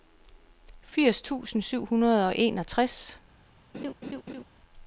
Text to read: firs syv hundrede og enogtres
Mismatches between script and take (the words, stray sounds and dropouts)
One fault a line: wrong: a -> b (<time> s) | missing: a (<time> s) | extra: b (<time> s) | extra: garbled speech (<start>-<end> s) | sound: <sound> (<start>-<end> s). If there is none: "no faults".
extra: tusind (1.2 s)
sound: laugh (3.7-4.4 s)